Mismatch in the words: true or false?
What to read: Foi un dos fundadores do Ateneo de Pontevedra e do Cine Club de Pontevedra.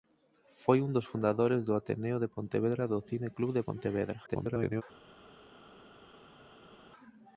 true